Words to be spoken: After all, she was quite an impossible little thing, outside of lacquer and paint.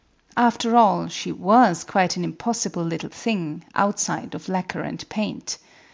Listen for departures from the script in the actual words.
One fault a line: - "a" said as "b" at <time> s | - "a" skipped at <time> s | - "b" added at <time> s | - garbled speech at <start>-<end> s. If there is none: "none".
none